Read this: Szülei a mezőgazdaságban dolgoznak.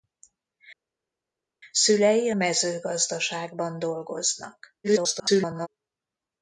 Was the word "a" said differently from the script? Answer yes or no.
yes